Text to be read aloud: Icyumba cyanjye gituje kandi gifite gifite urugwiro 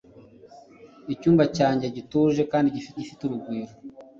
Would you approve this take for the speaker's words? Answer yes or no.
yes